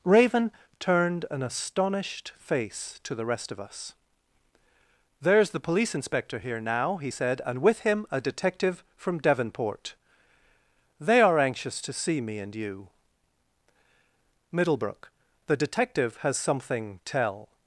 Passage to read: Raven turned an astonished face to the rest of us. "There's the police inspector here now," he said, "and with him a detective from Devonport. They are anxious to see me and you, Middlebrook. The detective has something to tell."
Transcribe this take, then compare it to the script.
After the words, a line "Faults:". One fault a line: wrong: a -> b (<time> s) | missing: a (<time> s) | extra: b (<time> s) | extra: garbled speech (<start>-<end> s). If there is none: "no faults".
Raven turned an astonished face to the rest of us. "There's the police inspector here now," he said, "and with him a detective from Devonport. They are anxious to see me and you, Middlebrook. The detective has something tell."
Faults:
missing: to (17.0 s)